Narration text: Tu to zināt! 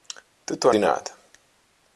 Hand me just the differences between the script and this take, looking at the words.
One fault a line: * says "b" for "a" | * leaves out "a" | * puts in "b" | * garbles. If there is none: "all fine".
all fine